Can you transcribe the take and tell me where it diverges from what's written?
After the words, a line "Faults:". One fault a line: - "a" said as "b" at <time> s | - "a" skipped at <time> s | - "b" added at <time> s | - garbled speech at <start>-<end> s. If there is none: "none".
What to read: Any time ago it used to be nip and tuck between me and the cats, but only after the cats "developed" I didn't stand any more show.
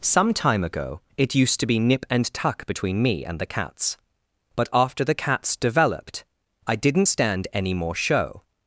Some time ago it used to be nip and tuck between me and the cats, but after the cats "developed" I didn't stand any more show.
Faults:
- "Any" said as "Some" at 0.0 s
- "only" skipped at 4.7 s